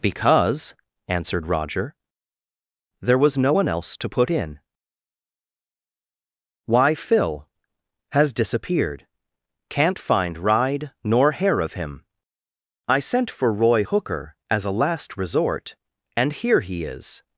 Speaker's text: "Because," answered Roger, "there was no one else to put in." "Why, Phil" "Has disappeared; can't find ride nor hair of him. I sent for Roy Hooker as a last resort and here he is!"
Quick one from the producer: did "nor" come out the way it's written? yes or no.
yes